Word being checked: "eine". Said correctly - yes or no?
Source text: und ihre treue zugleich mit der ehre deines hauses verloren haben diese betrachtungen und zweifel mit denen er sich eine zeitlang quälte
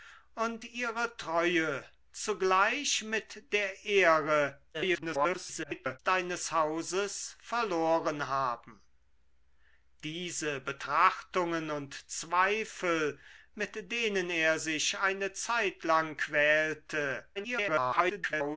yes